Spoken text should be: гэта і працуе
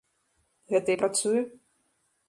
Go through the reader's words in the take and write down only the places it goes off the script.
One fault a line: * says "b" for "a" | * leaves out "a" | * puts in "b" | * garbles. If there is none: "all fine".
all fine